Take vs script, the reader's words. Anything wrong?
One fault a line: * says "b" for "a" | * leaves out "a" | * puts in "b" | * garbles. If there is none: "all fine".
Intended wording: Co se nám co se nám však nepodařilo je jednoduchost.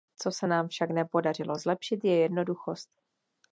* leaves out "co se nám"
* puts in "zlepšit"